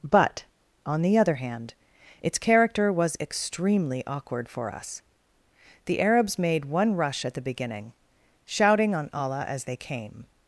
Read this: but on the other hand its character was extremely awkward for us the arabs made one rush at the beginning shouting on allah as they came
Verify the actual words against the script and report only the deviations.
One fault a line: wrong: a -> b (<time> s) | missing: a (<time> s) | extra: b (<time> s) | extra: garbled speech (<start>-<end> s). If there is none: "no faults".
no faults